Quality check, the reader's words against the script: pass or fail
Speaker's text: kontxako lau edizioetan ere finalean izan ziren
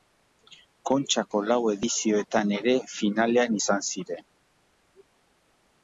pass